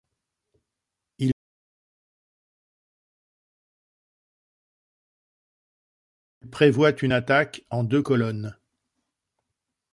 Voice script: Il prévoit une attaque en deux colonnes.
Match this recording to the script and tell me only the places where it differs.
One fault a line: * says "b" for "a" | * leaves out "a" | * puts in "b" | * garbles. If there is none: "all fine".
all fine